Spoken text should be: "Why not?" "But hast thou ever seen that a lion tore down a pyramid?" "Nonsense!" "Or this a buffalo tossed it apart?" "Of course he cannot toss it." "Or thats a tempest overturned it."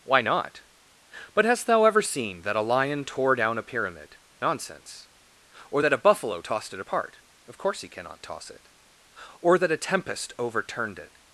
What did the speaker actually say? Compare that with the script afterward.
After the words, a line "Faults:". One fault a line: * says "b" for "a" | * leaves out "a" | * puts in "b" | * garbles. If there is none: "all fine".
"Why not?" "But hast thou ever seen that a lion tore down a pyramid?" "Nonsense!" "Or that a buffalo tossed it apart?" "Of course he cannot toss it." "Or that a tempest overturned it."
Faults:
* says "that" for "this"
* says "that" for "thats"